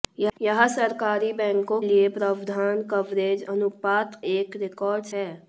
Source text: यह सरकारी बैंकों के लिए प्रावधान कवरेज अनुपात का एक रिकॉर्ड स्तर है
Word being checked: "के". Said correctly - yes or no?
no